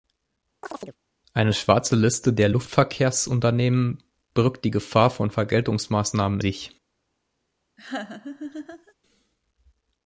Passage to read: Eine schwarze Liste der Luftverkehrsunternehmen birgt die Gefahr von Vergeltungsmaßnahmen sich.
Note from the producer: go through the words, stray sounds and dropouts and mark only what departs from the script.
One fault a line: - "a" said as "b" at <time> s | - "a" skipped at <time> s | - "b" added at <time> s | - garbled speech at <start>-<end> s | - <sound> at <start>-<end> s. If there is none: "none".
- chirp at 0.6-1.0 s
- laugh at 7.8-8.9 s